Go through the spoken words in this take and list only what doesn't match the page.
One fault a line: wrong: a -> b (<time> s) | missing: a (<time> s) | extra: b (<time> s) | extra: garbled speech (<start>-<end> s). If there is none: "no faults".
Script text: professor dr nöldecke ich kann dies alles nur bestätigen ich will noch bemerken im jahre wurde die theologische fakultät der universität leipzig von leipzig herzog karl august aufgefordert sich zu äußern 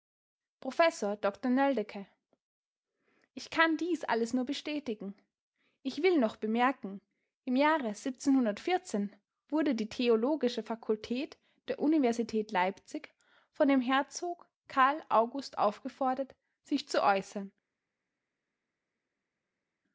wrong: leipzig -> dem (13.7 s)